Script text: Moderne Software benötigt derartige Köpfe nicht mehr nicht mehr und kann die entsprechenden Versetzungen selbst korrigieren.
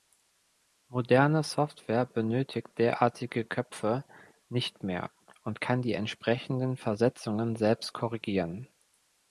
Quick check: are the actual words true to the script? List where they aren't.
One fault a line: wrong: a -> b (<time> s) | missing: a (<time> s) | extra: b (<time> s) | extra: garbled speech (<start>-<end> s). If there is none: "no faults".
missing: nicht mehr (5.1 s)